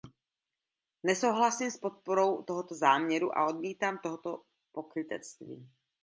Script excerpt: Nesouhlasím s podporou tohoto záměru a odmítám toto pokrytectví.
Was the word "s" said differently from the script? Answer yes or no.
no